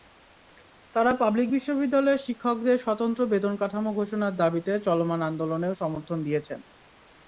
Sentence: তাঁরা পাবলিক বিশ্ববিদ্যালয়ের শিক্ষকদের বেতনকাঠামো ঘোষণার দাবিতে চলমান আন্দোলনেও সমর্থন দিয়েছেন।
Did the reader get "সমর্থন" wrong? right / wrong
right